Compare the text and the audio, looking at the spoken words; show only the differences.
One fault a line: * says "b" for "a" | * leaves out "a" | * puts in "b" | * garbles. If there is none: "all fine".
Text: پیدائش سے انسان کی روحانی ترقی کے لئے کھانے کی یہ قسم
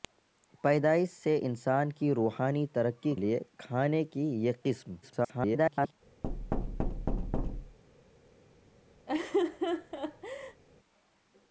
* leaves out "کے"
* garbles